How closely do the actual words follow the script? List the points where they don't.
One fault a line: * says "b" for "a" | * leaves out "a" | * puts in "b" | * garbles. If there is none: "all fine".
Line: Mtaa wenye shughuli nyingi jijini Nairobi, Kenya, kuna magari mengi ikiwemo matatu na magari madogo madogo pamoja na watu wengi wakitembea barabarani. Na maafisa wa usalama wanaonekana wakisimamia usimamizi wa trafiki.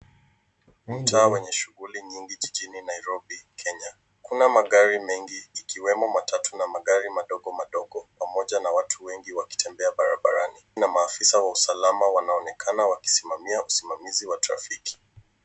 all fine